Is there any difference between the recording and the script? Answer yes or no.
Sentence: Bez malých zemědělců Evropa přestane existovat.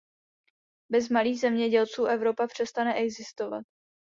no